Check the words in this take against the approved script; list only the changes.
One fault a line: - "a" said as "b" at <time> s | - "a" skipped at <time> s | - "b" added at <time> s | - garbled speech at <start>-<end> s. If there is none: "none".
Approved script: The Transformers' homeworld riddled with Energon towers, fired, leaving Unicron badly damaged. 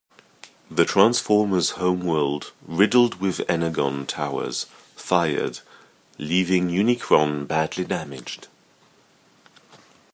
none